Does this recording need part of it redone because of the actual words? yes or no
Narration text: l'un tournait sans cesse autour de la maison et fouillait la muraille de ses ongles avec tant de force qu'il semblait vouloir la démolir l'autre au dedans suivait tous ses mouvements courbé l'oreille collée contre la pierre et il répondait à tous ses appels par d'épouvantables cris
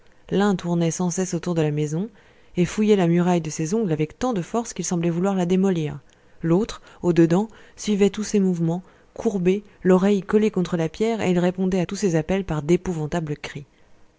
no